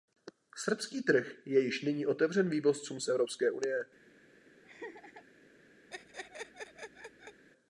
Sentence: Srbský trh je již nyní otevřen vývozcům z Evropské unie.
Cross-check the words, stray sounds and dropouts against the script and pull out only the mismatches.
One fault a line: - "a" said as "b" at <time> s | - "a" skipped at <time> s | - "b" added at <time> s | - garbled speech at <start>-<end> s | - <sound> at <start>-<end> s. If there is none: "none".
- laugh at 4.6-5.3 s
- laugh at 5.9-7.4 s